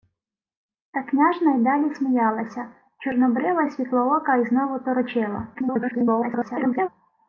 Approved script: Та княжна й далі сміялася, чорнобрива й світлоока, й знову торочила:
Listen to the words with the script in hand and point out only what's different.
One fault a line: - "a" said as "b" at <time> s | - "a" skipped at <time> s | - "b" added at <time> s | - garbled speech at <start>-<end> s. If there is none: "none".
- garbled speech at 5.5-6.9 s